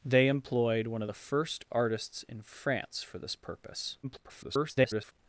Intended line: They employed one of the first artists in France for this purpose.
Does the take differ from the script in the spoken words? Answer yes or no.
yes